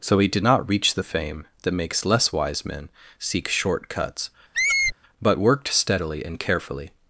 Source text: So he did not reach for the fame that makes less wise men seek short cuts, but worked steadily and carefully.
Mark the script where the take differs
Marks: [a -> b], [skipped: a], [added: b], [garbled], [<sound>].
So he did not reach [skipped: for] the fame that makes less wise men seek short cuts, [squeak] but worked steadily and carefully.